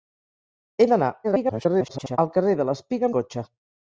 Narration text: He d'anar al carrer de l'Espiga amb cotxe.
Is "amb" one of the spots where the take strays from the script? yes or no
yes